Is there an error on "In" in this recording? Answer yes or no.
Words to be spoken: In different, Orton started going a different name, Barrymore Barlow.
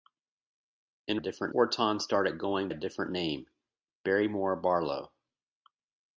no